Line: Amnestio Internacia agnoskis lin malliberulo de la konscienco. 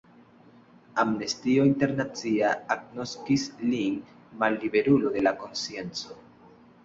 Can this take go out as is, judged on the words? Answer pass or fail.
pass